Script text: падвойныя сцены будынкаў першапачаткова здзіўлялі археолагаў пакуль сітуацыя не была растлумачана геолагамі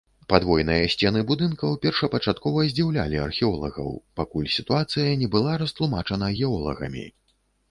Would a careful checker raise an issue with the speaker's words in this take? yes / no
no